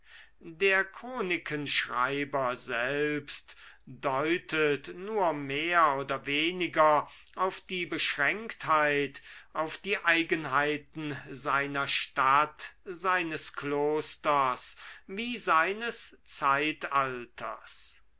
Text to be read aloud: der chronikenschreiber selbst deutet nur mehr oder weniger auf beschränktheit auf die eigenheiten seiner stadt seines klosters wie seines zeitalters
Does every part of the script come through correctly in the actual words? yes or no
no